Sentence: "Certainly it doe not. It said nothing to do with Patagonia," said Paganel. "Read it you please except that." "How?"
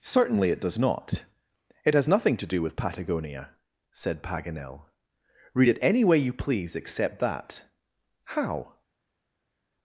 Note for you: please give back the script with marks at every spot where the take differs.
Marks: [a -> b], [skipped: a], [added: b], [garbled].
"Certainly it [doe -> does] not. It [said -> has] nothing to do with Patagonia," said Paganel. "Read it [added: any way] you please except that." "How?"